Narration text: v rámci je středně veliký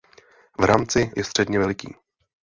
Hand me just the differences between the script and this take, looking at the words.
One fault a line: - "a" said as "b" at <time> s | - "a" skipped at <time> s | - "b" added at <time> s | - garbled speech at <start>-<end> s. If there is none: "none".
none